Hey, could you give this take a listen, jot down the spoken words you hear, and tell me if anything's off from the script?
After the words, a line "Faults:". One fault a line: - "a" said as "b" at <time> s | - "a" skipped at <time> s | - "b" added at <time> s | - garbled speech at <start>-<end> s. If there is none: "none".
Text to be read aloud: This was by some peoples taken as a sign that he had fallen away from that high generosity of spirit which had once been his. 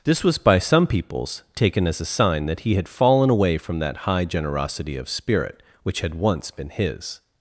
This was by some peoples taken as a sign that he had fallen away from that high generosity of spirit which had once been his.
Faults:
none